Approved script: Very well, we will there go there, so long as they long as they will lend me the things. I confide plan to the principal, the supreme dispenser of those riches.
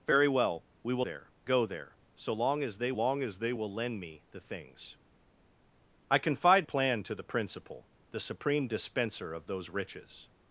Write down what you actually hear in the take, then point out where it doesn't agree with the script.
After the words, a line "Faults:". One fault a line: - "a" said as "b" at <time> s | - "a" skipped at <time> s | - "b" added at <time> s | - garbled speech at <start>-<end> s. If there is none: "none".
Very well, we will there go there, so long as they long as they will lend me the things. I confide plan to the principal, the supreme dispenser of those riches.
Faults:
none